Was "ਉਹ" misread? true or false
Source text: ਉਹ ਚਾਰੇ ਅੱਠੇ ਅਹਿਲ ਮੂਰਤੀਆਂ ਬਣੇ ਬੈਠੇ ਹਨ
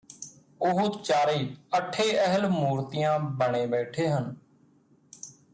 false